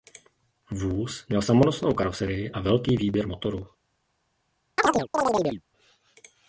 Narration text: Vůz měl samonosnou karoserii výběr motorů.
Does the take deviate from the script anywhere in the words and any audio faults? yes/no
yes